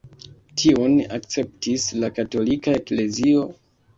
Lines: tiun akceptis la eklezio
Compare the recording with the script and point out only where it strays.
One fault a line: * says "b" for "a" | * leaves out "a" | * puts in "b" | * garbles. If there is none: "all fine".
* puts in "katolika"